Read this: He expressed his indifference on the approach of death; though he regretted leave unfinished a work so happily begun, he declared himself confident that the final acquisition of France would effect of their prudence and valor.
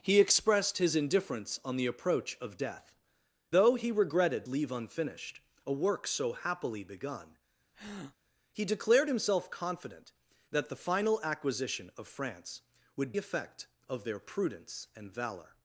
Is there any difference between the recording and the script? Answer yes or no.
no